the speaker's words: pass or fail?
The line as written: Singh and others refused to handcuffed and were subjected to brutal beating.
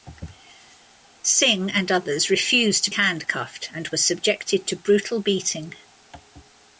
pass